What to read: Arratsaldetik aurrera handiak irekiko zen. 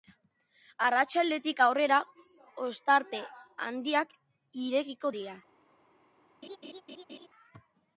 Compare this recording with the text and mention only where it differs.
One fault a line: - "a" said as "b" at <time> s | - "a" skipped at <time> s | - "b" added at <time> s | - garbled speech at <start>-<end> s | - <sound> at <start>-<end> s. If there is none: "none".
- "ostarte" added at 2.7 s
- "zen" said as "dira" at 5.2 s
- laugh at 6.4-7.3 s